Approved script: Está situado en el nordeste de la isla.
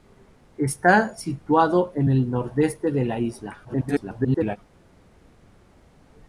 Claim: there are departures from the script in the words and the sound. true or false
true